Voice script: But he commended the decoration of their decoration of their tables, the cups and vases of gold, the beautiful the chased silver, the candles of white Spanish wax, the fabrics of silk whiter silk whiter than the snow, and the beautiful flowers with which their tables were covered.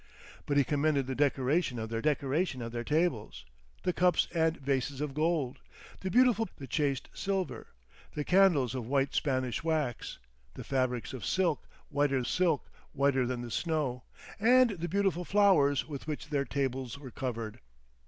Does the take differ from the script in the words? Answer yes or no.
no